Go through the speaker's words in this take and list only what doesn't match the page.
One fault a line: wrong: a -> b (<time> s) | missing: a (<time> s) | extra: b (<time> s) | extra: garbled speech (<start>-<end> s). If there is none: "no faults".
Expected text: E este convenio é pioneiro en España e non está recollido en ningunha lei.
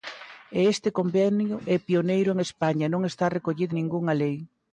missing: en (3.7 s)